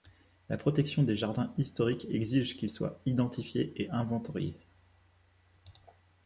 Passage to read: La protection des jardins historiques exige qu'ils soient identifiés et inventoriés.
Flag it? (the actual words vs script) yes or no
no